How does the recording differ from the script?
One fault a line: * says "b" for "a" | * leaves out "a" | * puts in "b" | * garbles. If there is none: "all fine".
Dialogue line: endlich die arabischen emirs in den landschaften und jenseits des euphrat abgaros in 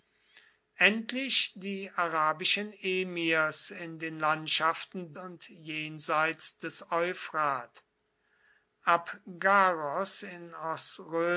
all fine